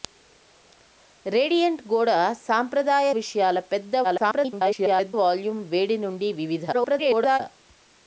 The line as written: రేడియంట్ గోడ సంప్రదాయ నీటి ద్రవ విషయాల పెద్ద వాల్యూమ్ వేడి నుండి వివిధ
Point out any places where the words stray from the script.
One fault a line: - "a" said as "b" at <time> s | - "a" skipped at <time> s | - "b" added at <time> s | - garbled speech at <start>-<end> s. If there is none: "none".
- "నీటి ద్రవ" skipped at 3.1 s
- garbled speech at 4.0-5.1 s
- garbled speech at 6.7-7.4 s